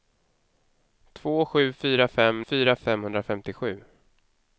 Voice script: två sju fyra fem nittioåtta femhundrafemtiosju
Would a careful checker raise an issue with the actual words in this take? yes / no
yes